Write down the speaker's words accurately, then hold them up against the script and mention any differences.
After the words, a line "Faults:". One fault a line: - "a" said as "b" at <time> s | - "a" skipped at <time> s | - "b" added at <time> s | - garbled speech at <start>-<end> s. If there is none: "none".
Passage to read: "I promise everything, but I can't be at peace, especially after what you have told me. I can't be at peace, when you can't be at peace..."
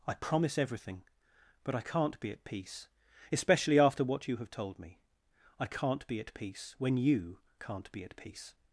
"I promise everything, but I can't be at peace, especially after what you have told me. I can't be at peace, when you can't be at peace..."
Faults:
none